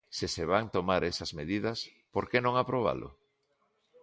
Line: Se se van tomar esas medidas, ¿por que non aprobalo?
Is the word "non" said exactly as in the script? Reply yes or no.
yes